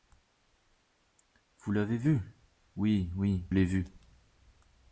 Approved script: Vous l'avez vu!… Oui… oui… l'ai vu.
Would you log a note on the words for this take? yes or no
no